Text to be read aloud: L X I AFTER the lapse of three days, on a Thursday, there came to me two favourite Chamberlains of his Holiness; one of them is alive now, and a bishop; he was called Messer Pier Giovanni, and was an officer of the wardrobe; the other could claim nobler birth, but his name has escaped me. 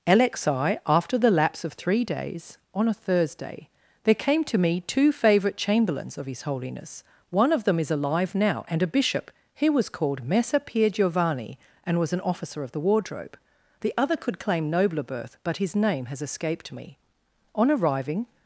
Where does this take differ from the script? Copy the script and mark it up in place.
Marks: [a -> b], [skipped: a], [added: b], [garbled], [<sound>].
L X I AFTER the lapse of three days, on a Thursday, there came to me two favourite Chamberlains of his Holiness; one of them is alive now, and a bishop; he was called Messer Pier Giovanni, and was an officer of the wardrobe; the other could claim nobler birth, but his name has escaped me. [added: On arriving]